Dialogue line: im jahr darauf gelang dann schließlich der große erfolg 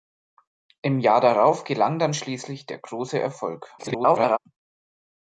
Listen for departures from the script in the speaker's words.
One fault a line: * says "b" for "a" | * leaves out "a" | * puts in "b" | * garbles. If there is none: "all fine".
* garbles